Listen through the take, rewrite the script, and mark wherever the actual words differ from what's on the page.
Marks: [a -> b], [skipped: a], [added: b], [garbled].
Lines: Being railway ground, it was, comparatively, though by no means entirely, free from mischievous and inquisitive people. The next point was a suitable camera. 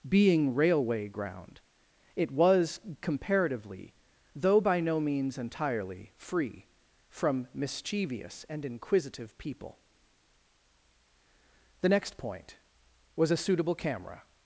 Being railway ground, it was, comparatively, though by no means entirely, free from mischievous and inquisitive people. The next point was a suitable camera.